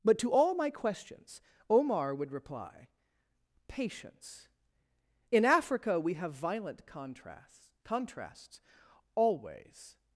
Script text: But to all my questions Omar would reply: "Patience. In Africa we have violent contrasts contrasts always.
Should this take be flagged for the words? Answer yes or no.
no